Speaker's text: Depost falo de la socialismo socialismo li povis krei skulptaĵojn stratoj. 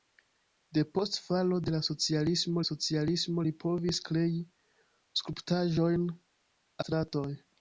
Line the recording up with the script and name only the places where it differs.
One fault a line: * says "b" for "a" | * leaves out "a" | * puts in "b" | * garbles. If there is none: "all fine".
all fine